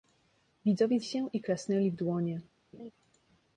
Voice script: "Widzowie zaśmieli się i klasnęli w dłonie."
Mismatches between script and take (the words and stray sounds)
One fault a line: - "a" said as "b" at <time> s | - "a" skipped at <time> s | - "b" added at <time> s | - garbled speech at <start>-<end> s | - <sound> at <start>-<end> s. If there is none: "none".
- "zaśmieli" skipped at 1.0 s
- laugh at 2.7-2.9 s